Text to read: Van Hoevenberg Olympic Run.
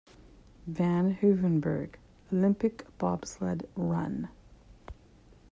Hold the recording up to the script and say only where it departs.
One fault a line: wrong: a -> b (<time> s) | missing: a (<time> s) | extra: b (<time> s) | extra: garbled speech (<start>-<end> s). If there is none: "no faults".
extra: Bobsled (3.0 s)